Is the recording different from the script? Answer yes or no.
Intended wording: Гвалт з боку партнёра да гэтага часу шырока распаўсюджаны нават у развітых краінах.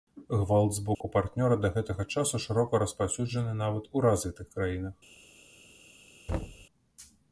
no